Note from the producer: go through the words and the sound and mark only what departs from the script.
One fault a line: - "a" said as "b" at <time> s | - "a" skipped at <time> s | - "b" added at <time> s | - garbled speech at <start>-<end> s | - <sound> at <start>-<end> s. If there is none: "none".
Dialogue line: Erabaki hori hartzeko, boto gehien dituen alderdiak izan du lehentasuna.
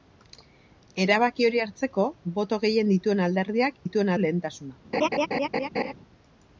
- "izan" said as "dituen" at 3.8 s
- laugh at 4.9-5.9 s